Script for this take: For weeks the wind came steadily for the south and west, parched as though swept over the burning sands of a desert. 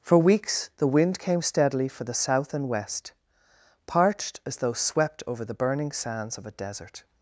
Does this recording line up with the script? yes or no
yes